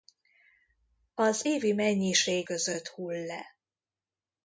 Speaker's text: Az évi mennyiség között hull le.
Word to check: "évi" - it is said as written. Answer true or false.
true